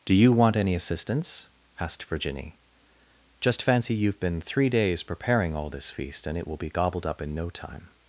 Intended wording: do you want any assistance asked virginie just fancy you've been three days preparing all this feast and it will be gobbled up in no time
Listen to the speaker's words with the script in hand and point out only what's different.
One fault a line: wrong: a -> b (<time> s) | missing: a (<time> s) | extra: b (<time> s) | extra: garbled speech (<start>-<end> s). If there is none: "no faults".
no faults